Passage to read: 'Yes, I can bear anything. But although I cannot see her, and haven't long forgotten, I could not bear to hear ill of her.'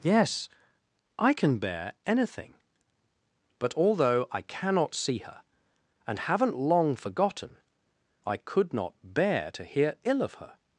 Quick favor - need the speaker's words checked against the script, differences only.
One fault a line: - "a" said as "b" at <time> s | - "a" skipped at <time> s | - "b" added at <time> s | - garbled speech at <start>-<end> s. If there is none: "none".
none